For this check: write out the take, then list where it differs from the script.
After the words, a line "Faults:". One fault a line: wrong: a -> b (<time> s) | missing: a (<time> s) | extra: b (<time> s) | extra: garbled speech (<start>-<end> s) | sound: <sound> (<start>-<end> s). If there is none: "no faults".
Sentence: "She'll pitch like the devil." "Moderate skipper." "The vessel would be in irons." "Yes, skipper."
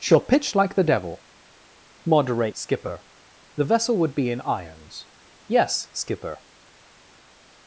"She'll pitch like the devil." "Moderate skipper." "The vessel would be in irons." "Yes, skipper."
Faults:
no faults